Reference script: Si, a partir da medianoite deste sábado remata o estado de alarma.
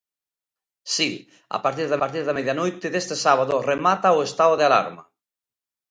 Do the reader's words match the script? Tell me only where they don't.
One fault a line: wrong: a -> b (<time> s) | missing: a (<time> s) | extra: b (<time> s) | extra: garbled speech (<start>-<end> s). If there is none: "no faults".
extra: partir da (2.0 s)